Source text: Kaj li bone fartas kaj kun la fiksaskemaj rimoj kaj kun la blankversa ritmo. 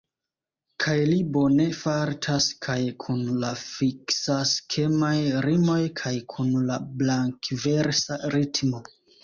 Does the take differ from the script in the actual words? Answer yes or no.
no